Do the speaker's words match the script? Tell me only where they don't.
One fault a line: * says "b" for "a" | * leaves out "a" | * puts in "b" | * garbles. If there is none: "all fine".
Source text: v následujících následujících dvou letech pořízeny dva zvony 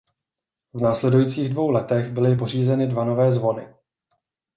* leaves out "následujících"
* puts in "byly"
* puts in "nové"